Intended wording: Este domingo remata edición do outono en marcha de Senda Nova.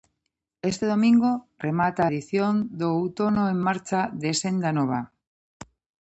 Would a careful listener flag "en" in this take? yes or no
no